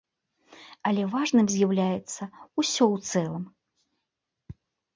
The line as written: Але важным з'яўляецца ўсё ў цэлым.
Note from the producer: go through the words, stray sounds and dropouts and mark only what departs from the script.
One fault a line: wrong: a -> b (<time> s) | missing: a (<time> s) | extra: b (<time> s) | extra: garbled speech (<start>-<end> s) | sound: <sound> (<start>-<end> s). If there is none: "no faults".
no faults